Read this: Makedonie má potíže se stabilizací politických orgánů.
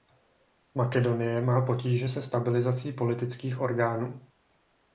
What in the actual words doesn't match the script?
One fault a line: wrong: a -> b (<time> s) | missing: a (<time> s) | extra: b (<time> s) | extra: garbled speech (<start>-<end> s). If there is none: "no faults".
no faults